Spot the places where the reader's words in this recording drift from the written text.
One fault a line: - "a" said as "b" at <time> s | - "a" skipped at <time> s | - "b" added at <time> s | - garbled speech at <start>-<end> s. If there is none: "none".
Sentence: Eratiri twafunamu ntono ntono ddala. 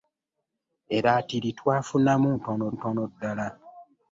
none